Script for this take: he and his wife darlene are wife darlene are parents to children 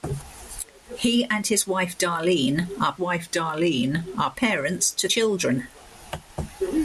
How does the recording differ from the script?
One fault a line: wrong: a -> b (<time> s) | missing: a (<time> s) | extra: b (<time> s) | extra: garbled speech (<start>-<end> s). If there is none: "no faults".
no faults